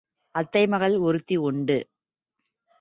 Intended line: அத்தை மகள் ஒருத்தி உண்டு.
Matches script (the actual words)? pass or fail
pass